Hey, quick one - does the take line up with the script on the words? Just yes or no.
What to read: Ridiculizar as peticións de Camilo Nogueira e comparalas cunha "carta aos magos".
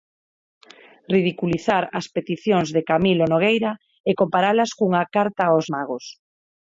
yes